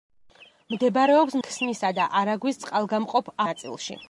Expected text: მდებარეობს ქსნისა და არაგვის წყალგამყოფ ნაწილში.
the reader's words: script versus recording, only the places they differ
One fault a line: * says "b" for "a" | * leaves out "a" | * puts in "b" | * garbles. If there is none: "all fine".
all fine